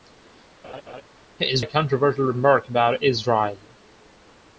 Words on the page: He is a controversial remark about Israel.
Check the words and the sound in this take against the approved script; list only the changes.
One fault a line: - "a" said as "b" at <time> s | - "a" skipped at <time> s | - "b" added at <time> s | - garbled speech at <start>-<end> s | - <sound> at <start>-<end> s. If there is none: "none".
- laugh at 0.6-1.0 s